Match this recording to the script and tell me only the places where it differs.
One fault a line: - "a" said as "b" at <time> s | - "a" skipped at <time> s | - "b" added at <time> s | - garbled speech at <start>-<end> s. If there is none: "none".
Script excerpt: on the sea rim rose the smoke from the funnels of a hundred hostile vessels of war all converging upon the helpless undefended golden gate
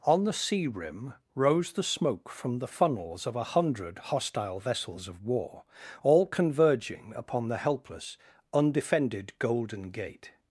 none